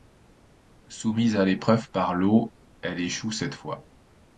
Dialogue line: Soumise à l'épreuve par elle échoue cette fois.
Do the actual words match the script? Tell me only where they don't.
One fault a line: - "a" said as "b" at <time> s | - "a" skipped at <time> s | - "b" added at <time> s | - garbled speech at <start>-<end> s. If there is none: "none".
- "l'eau" added at 2.1 s